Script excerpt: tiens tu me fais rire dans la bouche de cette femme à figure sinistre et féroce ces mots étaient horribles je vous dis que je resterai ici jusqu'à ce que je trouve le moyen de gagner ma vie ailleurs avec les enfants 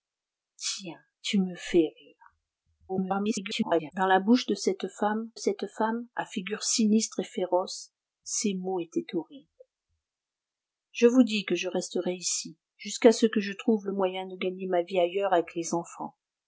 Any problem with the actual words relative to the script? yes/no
yes